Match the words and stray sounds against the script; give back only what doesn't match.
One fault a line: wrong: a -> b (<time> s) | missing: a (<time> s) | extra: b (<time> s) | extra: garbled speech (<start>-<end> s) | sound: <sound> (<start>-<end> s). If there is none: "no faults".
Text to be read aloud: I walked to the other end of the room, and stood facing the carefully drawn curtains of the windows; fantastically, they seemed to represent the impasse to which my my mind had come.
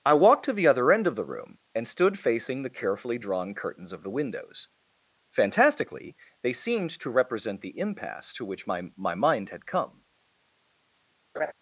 sound: laugh (11.3-11.5 s)